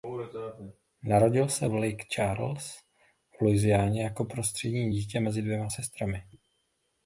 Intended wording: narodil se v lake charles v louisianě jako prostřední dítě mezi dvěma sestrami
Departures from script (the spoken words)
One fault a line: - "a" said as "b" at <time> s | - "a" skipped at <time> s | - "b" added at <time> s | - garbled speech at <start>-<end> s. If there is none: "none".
none